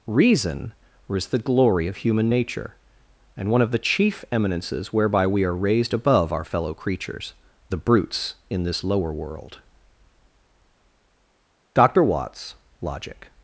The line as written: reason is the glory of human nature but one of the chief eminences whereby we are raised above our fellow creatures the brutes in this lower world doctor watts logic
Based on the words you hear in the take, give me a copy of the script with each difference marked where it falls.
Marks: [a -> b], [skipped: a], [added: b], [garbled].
reason is the glory of human nature [but -> and] one of the chief eminences whereby we are raised above our fellow creatures the brutes in this lower world doctor watts logic